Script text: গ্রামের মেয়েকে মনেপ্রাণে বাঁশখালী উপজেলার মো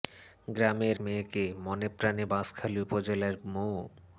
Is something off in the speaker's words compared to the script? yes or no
no